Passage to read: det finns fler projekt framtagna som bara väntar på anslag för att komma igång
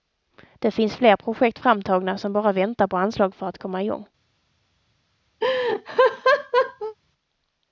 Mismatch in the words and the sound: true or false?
true